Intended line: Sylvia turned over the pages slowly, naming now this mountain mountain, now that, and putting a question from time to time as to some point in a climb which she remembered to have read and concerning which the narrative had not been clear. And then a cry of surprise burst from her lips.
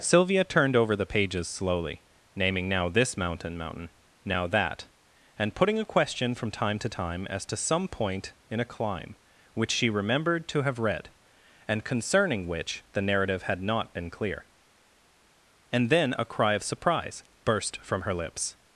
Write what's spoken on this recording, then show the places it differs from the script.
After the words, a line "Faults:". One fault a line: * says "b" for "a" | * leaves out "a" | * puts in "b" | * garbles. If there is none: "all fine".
Sylvia turned over the pages slowly, naming now this mountain mountain, now that, and putting a question from time to time as to some point in a climb which she remembered to have read and concerning which the narrative had not been clear. And then a cry of surprise burst from her lips.
Faults:
all fine